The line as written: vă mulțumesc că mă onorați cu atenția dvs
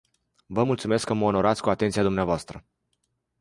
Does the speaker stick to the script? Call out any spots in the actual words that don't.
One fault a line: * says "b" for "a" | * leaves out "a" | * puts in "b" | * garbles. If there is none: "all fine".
all fine